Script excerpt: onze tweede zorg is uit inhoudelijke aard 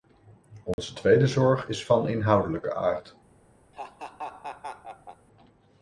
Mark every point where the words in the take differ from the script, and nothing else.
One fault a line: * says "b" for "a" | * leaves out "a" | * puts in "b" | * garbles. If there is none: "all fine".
* says "van" for "uit"